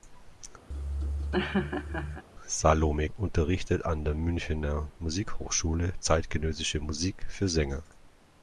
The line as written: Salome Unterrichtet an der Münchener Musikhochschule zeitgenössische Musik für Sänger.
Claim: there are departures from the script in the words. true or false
false